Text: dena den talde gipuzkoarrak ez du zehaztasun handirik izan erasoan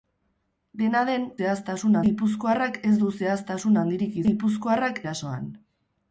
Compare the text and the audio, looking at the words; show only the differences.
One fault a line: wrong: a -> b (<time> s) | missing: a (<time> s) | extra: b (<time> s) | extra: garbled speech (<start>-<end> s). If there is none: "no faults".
wrong: talde -> zehaztasun (1.4 s)
wrong: izan -> gipuzkoarrak (4.3 s)